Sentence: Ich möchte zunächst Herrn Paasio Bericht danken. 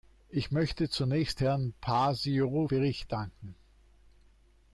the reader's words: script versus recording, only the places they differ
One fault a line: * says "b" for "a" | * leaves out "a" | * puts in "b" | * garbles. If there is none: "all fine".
all fine